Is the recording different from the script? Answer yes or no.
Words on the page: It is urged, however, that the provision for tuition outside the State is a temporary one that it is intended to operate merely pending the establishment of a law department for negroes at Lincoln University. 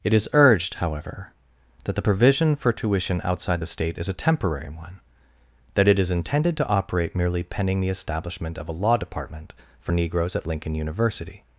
no